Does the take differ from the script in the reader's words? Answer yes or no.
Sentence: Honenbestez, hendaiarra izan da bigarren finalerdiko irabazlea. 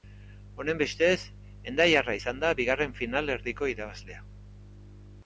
no